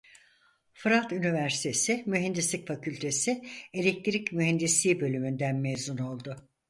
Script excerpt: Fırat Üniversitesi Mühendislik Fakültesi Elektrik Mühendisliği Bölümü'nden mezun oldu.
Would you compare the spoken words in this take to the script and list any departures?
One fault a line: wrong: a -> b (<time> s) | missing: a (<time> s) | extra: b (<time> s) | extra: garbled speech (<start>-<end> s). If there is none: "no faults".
no faults